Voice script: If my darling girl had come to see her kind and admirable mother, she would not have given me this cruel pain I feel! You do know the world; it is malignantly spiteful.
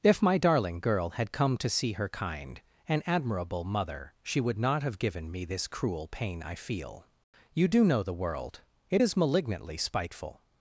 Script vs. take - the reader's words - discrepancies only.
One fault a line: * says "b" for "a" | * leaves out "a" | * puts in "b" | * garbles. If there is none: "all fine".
all fine